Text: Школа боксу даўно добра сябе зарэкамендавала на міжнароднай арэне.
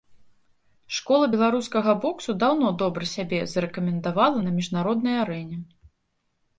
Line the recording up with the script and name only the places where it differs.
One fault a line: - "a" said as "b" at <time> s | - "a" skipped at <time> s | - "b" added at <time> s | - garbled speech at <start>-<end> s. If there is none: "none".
- "беларускага" added at 1.3 s